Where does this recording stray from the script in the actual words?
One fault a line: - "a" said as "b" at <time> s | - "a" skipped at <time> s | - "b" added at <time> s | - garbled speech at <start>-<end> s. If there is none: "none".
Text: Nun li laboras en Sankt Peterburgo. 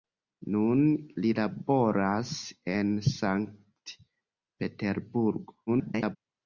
- garbled speech at 5.7-6.2 s